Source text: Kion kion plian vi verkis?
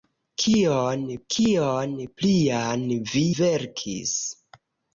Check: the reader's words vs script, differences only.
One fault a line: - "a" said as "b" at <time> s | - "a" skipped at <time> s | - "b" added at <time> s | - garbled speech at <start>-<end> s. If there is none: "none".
none